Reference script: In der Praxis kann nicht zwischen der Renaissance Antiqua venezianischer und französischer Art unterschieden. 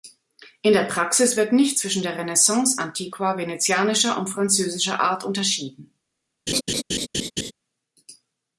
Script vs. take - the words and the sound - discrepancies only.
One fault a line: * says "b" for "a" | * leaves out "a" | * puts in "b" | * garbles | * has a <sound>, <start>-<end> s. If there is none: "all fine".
* says "wird" for "kann"
* has a laugh, 6.5-7.5 s